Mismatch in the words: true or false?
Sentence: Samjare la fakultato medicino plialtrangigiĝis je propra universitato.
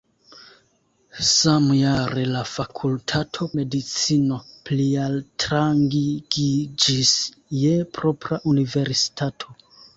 false